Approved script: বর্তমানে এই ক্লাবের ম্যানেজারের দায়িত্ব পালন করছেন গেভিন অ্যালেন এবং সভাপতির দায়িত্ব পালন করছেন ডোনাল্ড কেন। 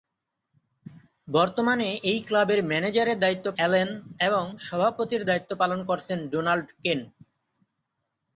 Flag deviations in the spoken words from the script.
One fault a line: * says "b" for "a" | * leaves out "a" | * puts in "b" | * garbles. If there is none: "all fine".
* leaves out "পালন করছেন গেভিন"